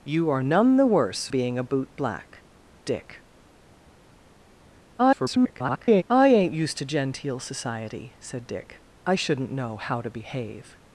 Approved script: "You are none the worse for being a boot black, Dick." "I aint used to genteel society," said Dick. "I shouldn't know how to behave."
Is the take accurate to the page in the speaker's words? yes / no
no